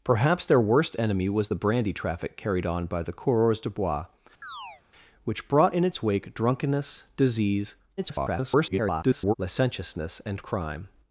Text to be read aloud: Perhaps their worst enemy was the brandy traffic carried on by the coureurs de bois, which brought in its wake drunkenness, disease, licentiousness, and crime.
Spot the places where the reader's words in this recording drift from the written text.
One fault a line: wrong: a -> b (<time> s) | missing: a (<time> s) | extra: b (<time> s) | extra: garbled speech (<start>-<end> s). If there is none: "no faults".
extra: garbled speech (8.0-9.3 s)